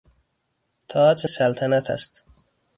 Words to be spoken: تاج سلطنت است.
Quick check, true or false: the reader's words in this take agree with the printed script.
true